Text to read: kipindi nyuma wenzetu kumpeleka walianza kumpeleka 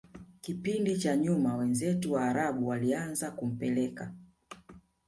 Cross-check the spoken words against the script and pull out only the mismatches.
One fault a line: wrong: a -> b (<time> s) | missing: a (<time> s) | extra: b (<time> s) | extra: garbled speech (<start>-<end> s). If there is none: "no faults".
extra: cha (1.0 s)
wrong: kumpeleka -> waarabu (2.1 s)